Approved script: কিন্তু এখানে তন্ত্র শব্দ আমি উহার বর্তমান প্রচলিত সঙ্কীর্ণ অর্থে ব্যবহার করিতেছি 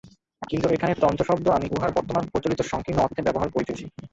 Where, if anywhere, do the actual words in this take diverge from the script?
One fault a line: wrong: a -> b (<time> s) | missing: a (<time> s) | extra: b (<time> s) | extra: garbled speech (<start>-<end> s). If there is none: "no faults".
no faults